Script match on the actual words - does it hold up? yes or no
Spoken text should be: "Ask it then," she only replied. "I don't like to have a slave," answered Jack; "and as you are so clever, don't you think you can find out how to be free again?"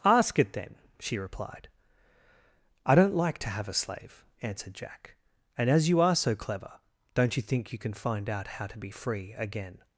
no